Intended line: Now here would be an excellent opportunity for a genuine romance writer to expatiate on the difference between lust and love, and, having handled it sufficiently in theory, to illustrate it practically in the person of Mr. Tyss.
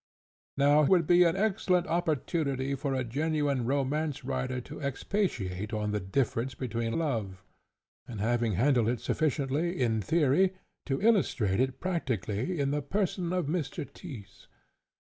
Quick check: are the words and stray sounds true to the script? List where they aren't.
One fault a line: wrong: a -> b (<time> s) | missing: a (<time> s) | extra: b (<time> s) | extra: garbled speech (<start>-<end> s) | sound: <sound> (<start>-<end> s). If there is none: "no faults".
missing: here (0.8 s)
missing: lust and (6.9 s)